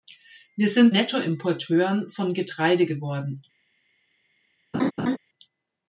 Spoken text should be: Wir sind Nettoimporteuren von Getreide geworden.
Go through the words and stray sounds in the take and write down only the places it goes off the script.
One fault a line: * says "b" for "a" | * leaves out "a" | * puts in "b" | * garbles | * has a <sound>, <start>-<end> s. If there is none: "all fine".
* has a laugh, 4.7-5.2 s